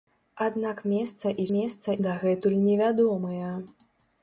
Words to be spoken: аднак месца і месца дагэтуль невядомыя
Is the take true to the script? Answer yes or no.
yes